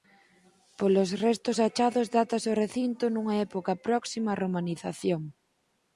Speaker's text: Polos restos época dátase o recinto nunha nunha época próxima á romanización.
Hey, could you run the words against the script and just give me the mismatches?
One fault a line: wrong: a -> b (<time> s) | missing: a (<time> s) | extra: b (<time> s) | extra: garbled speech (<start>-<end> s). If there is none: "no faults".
wrong: época -> achados (1.7 s)
missing: nunha (3.4 s)